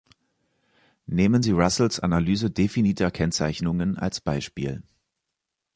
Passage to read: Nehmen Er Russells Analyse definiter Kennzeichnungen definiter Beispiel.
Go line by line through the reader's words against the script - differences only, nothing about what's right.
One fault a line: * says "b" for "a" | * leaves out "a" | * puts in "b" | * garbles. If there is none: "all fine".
* says "Sie" for "Er"
* says "als" for "definiter"